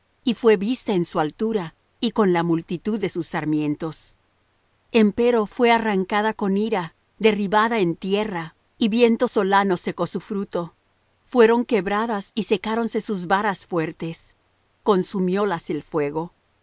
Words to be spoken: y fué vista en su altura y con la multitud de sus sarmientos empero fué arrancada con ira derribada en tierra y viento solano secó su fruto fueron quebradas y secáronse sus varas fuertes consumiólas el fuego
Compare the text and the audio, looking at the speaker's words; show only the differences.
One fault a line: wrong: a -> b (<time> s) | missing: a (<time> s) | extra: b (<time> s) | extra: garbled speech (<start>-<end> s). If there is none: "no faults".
no faults